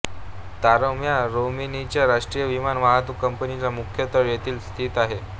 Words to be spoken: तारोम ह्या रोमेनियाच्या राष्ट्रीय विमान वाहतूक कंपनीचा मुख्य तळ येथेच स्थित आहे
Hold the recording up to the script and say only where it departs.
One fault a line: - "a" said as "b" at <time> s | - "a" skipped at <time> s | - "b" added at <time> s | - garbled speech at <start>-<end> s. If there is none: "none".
none